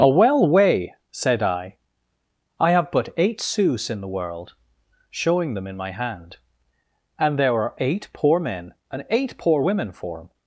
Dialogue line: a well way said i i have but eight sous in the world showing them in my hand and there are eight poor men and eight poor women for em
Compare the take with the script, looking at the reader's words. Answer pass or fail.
pass